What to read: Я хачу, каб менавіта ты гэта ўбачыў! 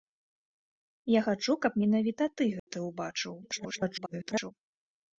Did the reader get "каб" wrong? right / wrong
right